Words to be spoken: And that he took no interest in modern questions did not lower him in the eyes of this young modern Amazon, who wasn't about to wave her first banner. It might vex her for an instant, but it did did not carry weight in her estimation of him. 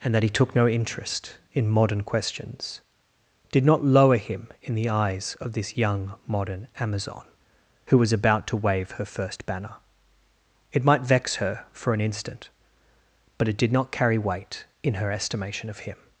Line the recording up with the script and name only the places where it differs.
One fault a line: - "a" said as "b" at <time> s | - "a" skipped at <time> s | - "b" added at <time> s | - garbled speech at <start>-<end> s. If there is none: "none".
- "wasn't" said as "was" at 8.0 s
- "did" skipped at 13.7 s